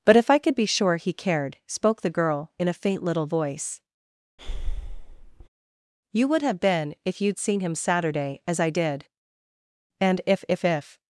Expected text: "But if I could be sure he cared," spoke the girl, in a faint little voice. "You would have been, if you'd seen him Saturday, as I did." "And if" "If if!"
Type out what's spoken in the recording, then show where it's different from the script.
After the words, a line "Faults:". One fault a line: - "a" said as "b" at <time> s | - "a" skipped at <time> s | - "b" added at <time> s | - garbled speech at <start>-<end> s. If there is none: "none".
"But if I could be sure he cared," spoke the girl, in a faint little voice. "You would have been, if you'd seen him Saturday, as I did." "And if" "If if!"
Faults:
none